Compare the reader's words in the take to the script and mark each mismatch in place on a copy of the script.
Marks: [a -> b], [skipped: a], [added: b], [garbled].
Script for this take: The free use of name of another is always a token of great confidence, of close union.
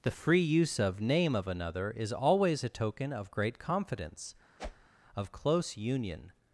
The free use of name of another is always a token of great confidence, of close union.